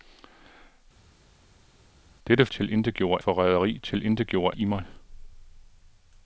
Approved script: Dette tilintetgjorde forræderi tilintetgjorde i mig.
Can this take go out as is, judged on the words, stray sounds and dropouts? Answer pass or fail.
pass